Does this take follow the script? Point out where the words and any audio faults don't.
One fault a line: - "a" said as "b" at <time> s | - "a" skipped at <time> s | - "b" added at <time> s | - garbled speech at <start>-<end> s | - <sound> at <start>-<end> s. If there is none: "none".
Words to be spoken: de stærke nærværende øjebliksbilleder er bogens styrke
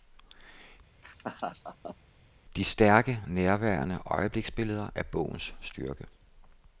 - laugh at 1.0-2.0 s